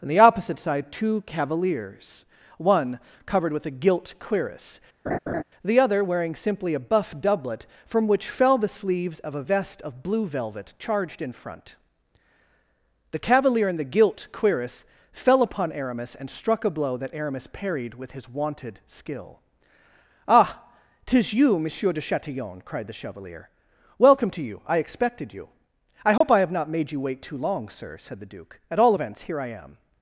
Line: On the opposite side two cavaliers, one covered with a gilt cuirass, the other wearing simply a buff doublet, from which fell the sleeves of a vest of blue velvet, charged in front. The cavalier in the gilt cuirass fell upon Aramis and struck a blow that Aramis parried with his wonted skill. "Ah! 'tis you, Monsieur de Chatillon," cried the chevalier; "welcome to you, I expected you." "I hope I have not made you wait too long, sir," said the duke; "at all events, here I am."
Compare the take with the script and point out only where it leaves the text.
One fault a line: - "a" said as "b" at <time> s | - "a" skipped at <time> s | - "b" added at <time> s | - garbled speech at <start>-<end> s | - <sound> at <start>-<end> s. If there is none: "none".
- laugh at 5.1-5.4 s
- dropout at 26.2-26.2 s